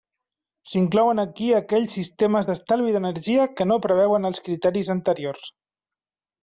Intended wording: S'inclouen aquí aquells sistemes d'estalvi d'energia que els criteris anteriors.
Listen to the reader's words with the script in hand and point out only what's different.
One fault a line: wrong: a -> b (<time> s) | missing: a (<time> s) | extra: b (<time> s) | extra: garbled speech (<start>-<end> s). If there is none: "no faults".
extra: no preveuen (3.7 s)